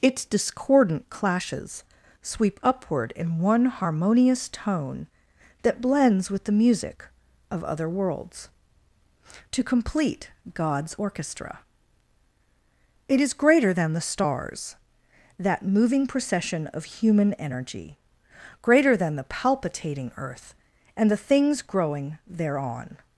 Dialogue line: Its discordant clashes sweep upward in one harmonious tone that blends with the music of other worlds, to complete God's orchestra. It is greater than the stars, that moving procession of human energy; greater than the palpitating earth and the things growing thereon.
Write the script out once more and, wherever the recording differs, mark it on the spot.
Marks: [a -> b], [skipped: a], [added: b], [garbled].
Its discordant clashes sweep upward in one harmonious tone that blends with the music of other worlds, to complete God's orchestra. It is greater than the stars, that moving procession of human energy; greater than the palpitating earth and the things growing thereon.